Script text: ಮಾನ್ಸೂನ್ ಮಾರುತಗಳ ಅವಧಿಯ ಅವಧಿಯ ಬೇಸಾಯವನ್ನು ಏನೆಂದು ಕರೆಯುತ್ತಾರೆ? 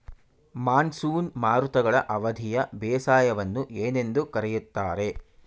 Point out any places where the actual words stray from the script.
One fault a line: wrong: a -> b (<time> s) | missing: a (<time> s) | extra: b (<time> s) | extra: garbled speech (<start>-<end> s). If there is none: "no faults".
missing: ಅವಧಿಯ (2.6 s)